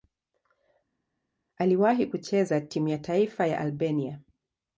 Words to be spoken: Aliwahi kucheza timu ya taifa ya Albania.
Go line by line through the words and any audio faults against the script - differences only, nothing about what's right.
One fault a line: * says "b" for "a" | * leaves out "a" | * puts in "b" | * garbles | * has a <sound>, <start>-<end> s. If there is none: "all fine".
all fine